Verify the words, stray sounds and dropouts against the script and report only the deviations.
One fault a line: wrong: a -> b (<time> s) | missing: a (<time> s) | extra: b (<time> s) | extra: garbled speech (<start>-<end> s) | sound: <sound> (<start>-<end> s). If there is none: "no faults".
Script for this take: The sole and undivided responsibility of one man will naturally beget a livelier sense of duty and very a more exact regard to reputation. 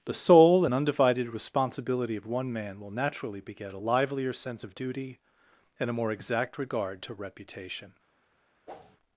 missing: very (5.9 s)
sound: whoosh (8.7-9.0 s)